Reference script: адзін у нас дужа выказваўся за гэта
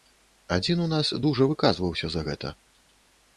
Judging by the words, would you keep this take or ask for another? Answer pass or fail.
pass